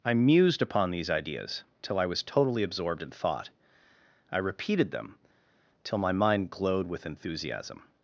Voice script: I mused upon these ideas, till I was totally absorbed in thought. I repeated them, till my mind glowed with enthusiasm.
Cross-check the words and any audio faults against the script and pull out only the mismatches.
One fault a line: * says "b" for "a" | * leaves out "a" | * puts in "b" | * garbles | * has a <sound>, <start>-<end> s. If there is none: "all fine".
all fine